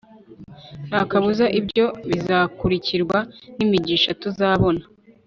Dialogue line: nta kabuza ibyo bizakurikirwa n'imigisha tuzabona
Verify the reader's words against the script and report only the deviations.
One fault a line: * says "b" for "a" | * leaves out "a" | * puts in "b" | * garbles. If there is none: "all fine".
all fine